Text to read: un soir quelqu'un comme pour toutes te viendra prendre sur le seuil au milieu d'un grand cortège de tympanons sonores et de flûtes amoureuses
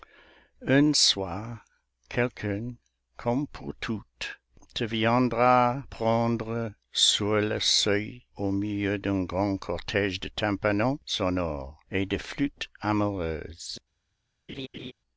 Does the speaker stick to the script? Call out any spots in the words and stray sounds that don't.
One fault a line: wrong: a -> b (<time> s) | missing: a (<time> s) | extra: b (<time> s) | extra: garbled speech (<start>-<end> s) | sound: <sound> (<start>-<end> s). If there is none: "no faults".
sound: laugh (14.5-14.9 s)